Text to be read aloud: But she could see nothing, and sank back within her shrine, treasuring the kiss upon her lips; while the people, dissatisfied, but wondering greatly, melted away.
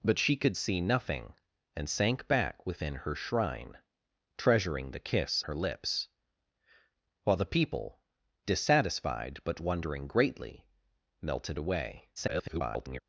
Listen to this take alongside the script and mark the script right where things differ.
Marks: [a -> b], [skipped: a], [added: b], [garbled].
But she could see nothing, and sank back within her shrine, treasuring the kiss [skipped: upon] her lips; while the people, dissatisfied, but wondering greatly, melted away. [garbled]